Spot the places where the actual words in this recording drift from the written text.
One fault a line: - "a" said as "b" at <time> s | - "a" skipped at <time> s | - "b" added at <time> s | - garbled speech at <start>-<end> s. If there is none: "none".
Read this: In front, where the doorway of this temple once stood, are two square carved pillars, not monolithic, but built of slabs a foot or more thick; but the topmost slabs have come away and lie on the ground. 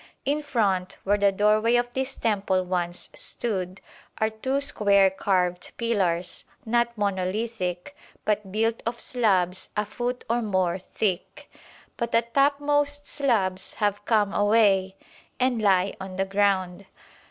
none